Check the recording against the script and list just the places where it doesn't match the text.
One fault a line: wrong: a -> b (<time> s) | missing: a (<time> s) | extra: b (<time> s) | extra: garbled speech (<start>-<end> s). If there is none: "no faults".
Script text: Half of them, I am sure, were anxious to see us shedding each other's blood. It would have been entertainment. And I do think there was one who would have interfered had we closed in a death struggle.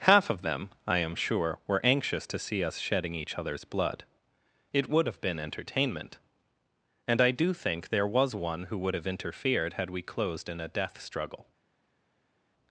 no faults